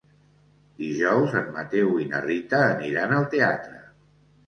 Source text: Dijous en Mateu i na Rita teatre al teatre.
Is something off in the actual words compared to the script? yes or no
yes